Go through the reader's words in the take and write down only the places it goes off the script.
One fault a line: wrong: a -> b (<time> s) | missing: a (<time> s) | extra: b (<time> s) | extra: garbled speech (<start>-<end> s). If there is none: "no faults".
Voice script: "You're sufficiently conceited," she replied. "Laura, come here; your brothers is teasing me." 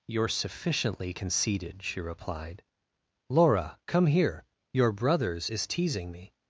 no faults